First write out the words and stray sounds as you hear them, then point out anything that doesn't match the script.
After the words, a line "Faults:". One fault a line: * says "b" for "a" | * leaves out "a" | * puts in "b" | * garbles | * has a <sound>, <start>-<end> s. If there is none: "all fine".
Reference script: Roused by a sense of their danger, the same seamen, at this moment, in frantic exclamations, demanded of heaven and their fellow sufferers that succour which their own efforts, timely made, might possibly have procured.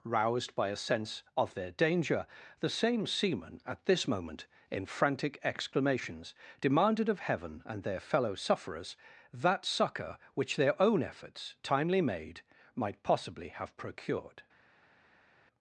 Roused by a sense of their danger, the same seamen, at this moment, in frantic exclamations, demanded of heaven and their fellow sufferers that succour which their own efforts, timely made, might possibly have procured.
Faults:
all fine